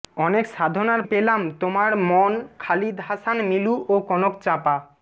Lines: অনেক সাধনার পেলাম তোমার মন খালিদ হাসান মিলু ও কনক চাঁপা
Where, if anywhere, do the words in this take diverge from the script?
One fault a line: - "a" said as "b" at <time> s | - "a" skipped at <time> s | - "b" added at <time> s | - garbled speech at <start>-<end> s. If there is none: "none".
none